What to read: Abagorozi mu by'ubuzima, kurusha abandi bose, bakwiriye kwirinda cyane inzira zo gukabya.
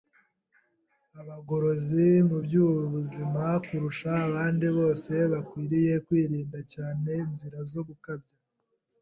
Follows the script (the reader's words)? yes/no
yes